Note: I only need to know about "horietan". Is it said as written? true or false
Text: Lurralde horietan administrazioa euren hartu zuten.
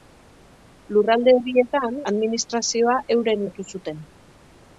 true